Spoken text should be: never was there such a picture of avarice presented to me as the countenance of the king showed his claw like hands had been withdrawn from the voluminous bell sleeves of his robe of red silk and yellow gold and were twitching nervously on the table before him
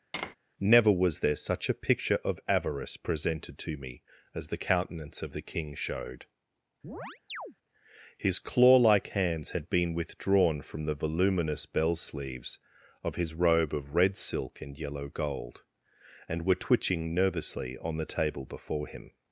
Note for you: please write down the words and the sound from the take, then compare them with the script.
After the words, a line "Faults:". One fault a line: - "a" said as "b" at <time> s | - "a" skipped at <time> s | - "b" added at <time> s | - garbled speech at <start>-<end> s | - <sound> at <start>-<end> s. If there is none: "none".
never was there such a picture of avarice presented to me as the countenance of the king showed his claw like hands had been withdrawn from the voluminous bell sleeves of his robe of red silk and yellow gold and were twitching nervously on the table before him
Faults:
- tap at 0.1-0.4 s
- chirp at 6.8-7.6 s